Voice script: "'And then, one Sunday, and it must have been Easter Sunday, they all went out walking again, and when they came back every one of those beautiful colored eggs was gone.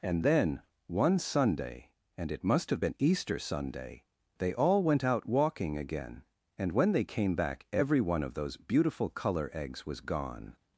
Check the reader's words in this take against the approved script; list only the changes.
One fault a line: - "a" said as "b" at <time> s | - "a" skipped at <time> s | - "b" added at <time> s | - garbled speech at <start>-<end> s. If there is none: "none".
- "colored" said as "color" at 9.1 s